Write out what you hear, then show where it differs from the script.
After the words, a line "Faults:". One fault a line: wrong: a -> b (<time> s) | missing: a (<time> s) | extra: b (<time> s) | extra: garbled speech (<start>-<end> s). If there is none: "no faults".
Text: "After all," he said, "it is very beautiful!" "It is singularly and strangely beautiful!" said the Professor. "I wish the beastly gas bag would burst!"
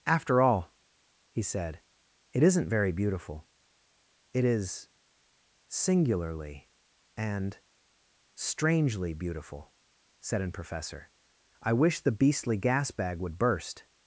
"After all," he said, "it isn't very beautiful!" "It is singularly and strangely beautiful!" said an Professor. "I wish the beastly gas bag would burst!"
Faults:
wrong: is -> isn't (2.4 s)
wrong: the -> an (10.4 s)